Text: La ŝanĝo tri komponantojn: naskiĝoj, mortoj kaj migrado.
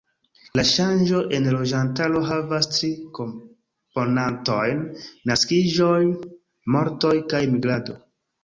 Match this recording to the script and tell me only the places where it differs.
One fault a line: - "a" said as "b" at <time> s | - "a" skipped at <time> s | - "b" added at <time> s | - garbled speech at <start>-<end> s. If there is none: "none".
- "en loĝantaro havas" added at 1.4 s